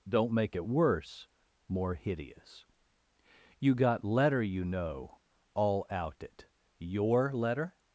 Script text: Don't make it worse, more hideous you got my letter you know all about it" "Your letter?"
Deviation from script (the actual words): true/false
true